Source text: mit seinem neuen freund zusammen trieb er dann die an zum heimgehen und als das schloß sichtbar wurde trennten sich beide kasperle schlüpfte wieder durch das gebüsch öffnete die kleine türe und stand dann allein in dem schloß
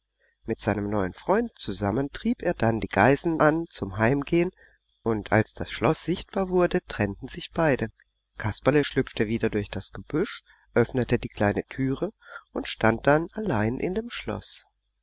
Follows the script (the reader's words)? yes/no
no